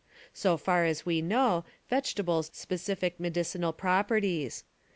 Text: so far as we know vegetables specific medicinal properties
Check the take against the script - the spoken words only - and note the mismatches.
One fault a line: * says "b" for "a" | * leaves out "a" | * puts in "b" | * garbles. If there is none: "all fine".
all fine